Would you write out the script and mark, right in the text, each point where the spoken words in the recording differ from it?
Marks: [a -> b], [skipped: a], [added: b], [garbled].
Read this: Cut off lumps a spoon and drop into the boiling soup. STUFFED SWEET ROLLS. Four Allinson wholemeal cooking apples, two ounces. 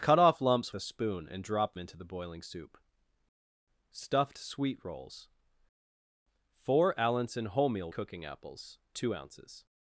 Cut off lumps a spoon and drop into the boiling soup. STUFFED SWEET ROLLS. Four Allinson wholemeal cooking apples, two ounces.